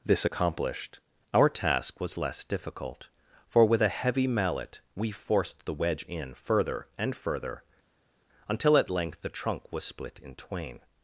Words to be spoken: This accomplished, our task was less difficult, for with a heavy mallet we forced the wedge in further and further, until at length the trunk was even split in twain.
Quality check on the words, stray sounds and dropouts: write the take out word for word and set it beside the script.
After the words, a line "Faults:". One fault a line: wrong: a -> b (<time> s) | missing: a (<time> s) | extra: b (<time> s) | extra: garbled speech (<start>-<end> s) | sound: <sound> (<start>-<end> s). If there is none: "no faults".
This accomplished, our task was less difficult, for with a heavy mallet we forced the wedge in further and further, until at length the trunk was split in twain.
Faults:
missing: even (9.8 s)